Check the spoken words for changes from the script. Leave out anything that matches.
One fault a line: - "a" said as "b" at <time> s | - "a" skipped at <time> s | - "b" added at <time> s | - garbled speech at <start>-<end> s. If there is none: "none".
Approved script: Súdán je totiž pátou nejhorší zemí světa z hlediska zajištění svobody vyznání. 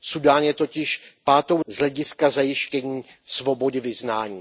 - "nejhorší zemí světa" skipped at 1.6 s